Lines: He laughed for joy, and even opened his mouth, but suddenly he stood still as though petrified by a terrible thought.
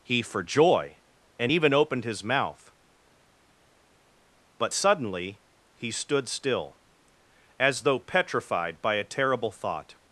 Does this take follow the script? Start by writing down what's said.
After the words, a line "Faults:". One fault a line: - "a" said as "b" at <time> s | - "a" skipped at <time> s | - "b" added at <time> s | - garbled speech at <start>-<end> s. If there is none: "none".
He for joy, and even opened his mouth, but suddenly he stood still as though petrified by a terrible thought.
Faults:
- "laughed" skipped at 0.2 s